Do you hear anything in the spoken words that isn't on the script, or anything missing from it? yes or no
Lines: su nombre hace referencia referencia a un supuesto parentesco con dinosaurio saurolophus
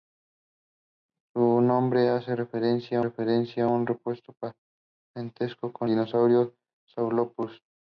no